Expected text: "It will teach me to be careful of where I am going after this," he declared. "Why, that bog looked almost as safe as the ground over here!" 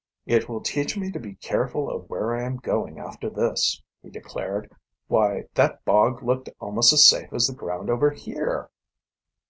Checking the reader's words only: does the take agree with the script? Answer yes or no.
yes